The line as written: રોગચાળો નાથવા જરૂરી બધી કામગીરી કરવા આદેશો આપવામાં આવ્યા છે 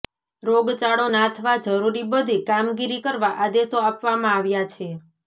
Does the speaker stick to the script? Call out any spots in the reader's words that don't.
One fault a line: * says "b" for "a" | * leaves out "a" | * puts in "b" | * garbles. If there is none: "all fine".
all fine